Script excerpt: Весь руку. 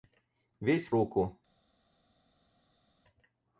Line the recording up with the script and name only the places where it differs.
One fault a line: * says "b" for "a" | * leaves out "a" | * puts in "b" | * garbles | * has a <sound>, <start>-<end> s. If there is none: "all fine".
all fine